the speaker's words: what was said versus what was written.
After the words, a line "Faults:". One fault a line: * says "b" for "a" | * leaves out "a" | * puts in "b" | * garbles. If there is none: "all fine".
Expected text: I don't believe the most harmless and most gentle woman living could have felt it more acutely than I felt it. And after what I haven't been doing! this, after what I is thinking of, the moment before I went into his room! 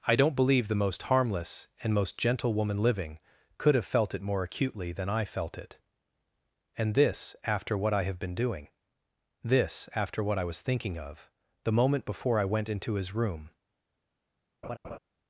I don't believe the most harmless and most gentle woman living could have felt it more acutely than I felt it. And this, after what I have been doing! this, after what I was thinking of, the moment before I went into his room!
Faults:
* puts in "this"
* says "have" for "haven't"
* says "was" for "is"